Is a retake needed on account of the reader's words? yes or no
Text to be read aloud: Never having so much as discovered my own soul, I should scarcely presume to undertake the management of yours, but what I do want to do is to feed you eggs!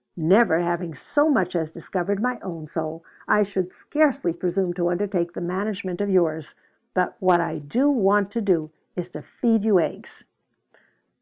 no